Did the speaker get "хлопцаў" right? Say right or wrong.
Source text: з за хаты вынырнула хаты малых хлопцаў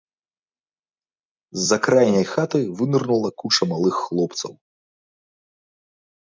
right